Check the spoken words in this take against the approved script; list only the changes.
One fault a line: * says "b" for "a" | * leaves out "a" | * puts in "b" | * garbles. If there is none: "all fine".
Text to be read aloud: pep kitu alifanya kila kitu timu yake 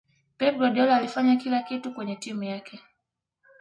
* says "guardiola" for "kitu"
* puts in "kwenye"